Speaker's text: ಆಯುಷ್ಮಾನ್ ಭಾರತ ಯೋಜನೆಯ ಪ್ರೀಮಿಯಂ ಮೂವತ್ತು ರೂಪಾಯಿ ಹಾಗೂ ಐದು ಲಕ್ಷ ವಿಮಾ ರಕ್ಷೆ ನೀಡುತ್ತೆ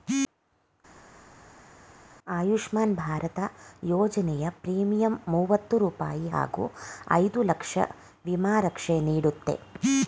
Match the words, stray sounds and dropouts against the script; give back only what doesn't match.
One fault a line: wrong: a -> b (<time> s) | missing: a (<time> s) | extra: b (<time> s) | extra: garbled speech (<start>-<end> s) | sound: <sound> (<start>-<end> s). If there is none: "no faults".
no faults